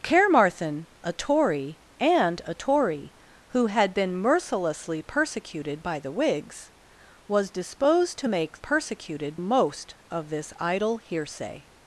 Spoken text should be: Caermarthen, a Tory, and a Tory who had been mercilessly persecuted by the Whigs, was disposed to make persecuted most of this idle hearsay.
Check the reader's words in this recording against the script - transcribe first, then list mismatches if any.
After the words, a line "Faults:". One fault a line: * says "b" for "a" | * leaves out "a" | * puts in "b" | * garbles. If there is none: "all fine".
Caermarthen, a Tory, and a Tory who had been mercilessly persecuted by the Whigs, was disposed to make persecuted most of this idle hearsay.
Faults:
all fine